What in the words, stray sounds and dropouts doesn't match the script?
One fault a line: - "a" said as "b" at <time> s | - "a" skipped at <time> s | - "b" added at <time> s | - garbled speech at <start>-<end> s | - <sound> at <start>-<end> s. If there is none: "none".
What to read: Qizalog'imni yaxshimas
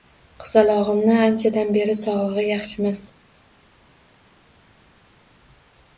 - "anchadan beri sog'lig'i" added at 1.3 s